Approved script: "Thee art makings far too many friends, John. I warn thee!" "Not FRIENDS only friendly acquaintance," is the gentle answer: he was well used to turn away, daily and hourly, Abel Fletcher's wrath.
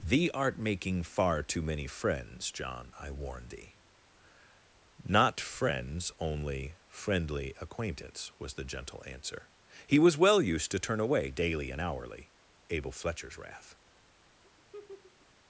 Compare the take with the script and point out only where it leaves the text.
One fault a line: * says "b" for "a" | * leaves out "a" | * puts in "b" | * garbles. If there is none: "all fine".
* says "making" for "makings"
* says "was" for "is"